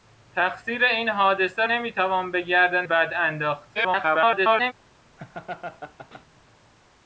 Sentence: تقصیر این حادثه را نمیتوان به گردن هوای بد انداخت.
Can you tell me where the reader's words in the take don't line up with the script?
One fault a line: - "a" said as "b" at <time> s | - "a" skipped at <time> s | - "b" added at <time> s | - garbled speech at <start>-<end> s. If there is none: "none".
- "را" skipped at 1.6 s
- "هوای" skipped at 2.9 s
- garbled speech at 3.7-4.7 s